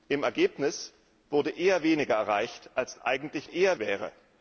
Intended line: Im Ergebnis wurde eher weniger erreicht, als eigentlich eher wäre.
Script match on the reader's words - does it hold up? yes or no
yes